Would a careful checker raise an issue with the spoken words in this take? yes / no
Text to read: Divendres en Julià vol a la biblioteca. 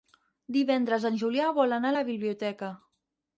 yes